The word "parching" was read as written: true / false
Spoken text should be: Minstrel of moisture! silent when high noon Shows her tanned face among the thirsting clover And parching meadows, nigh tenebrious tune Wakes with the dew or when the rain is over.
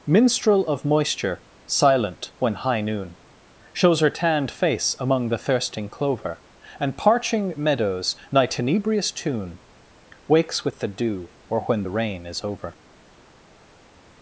true